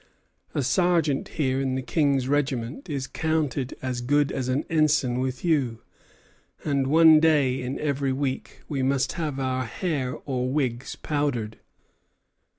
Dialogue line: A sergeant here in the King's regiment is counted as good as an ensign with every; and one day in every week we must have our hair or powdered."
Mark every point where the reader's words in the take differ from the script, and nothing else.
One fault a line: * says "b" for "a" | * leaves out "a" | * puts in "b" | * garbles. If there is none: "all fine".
* says "you" for "every"
* puts in "wigs"